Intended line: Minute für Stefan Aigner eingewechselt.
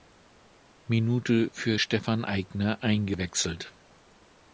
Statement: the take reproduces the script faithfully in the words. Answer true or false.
true